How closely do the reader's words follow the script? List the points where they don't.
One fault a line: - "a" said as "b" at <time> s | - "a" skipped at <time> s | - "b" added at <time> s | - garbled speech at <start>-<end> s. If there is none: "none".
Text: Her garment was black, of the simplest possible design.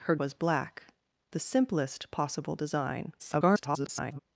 - "garment" skipped at 0.1 s
- "of" skipped at 0.8 s
- garbled speech at 3.2-4.2 s